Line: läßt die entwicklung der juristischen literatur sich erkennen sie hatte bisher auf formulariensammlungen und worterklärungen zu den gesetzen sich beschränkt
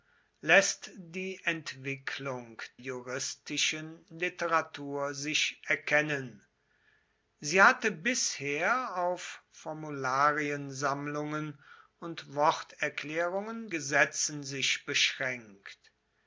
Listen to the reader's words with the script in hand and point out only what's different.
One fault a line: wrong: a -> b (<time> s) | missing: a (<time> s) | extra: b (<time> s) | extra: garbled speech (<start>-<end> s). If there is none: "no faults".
missing: der (2.6 s)
missing: zu den (13.7 s)